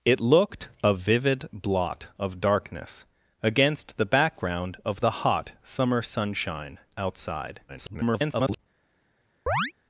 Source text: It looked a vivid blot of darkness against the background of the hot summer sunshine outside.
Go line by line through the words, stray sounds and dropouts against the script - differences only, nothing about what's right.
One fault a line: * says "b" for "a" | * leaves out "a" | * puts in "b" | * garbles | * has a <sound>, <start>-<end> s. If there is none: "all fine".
* garbles
* has a chirp, 9.5-9.7 s